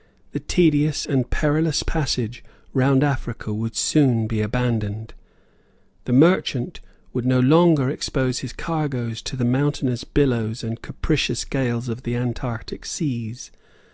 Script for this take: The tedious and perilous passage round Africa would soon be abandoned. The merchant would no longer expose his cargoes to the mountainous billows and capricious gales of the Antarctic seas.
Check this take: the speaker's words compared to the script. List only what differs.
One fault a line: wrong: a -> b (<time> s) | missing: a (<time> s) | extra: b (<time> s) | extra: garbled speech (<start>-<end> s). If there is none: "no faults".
no faults